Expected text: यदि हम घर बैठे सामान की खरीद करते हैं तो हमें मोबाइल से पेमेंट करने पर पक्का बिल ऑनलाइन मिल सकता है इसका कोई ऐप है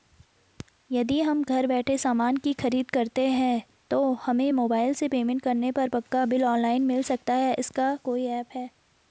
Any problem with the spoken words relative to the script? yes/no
no